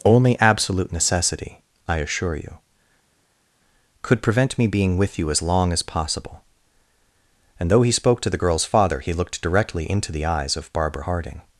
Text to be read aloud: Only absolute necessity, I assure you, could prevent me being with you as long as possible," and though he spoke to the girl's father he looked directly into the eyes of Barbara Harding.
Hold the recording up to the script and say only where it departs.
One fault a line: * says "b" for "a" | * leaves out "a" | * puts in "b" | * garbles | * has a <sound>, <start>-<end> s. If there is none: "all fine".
all fine